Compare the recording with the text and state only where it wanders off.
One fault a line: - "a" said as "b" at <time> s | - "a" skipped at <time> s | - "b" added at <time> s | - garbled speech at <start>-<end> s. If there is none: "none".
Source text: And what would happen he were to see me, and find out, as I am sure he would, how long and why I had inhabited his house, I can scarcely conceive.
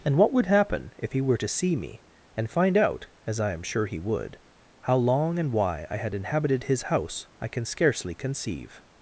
- "if" added at 1.0 s